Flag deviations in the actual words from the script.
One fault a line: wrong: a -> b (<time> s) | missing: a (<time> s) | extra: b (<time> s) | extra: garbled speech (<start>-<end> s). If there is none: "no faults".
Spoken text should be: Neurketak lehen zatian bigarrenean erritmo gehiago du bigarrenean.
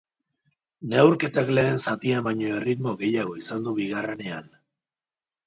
wrong: bigarrenean -> baino (2.3 s)
extra: izan (3.4 s)